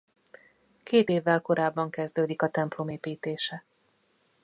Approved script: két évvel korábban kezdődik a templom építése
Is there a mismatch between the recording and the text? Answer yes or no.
no